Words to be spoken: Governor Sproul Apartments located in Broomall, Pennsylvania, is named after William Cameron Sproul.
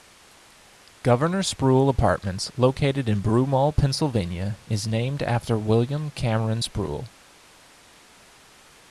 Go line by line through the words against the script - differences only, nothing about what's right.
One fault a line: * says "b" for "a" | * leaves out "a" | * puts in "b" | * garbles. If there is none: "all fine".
all fine